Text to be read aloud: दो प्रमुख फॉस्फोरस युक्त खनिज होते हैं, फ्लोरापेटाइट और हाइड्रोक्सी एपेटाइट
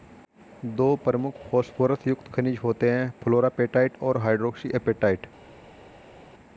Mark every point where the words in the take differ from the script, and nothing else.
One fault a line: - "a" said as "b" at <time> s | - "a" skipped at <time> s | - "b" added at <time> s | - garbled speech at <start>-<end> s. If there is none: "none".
none